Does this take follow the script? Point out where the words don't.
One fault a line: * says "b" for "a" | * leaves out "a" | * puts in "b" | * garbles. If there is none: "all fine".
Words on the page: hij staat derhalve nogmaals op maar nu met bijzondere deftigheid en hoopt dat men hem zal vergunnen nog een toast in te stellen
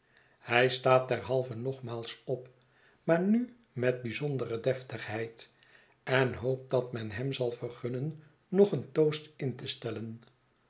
all fine